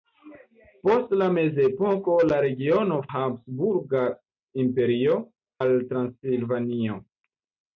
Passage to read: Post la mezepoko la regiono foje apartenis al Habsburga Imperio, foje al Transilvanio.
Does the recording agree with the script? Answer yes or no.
no